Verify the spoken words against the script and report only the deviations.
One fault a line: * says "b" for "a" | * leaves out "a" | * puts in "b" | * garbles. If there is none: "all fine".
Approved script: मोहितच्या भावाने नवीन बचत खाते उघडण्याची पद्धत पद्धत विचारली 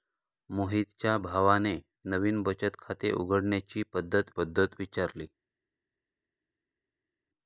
all fine